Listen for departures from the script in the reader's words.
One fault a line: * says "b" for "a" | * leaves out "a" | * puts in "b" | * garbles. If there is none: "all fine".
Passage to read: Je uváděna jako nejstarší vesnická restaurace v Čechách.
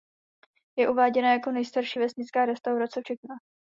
all fine